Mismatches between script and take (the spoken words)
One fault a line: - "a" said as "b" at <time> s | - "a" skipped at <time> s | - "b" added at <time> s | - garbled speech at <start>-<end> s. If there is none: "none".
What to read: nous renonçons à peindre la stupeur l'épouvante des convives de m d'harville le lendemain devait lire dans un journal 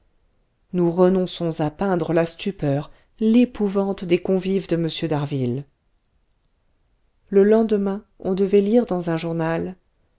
- "on" added at 8.2 s